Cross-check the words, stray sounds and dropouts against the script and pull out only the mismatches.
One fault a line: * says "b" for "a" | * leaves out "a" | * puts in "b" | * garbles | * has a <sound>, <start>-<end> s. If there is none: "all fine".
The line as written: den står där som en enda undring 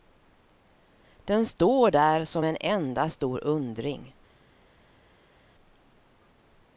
* puts in "stor"